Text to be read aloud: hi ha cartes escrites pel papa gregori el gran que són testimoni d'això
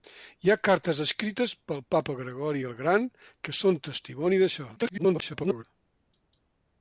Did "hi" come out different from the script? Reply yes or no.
no